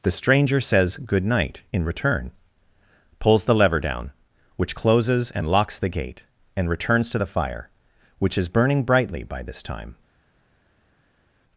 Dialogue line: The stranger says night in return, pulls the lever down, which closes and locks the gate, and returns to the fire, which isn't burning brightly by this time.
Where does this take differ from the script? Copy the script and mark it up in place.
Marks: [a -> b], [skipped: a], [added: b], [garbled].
The stranger says [added: good] night in return, pulls the lever down, which closes and locks the gate, and returns to the fire, which [isn't -> is] burning brightly by this time.